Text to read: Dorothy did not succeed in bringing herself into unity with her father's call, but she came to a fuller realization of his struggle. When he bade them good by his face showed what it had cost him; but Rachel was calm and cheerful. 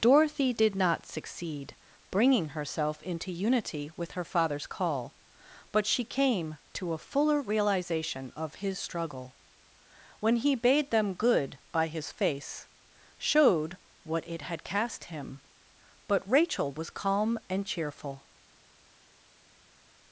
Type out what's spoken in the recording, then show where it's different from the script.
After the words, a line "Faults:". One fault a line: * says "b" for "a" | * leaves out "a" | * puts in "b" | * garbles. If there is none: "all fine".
Dorothy did not succeed bringing herself into unity with her father's call, but she came to a fuller realization of his struggle. When he bade them good by his face showed what it had cast him; but Rachel was calm and cheerful.
Faults:
* leaves out "in"
* says "cast" for "cost"